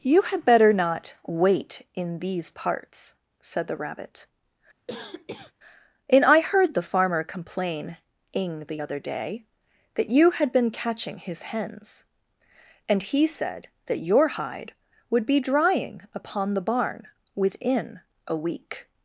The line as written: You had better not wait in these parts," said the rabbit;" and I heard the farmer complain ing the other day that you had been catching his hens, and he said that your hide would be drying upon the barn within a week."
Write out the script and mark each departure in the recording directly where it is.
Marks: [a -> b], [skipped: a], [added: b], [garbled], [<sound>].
You had better not wait in these parts," said the rabbit;" [cough] and I heard the farmer complain ing the other day that you had been catching his hens, and he said that your hide would be drying upon the barn within a week."